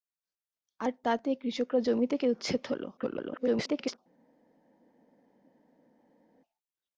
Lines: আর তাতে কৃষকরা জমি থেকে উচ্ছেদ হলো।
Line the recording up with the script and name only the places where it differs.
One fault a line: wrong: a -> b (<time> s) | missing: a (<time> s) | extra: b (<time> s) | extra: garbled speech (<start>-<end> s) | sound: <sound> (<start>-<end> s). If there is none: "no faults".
extra: garbled speech (3.0-4.0 s)